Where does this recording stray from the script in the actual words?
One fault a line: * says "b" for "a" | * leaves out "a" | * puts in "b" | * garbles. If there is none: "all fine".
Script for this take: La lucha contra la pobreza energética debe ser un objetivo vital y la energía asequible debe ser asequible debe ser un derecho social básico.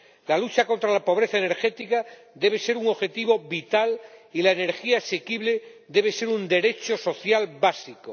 * leaves out "asequible debe ser"